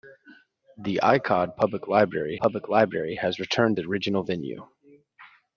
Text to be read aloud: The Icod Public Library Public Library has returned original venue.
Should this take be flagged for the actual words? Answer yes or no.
no